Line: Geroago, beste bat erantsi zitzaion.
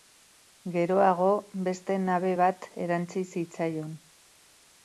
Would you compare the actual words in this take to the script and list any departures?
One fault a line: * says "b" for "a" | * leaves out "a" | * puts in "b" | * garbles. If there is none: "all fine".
* puts in "nabe"